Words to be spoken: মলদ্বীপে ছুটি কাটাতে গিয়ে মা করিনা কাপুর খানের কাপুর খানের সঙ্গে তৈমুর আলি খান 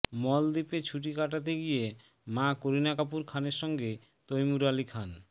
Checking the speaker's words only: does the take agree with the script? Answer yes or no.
no